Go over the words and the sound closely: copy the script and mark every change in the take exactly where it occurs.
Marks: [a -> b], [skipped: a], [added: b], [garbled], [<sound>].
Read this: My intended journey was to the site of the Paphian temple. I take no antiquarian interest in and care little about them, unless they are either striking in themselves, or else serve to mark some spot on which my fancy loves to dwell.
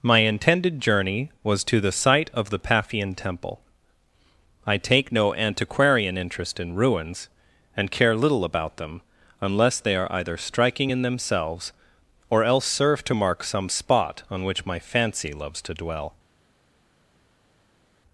My intended journey was to the site of the Paphian temple. I take no antiquarian interest in [added: ruins] and care little about them, unless they are either striking in themselves, or else serve to mark some spot on which my fancy loves to dwell.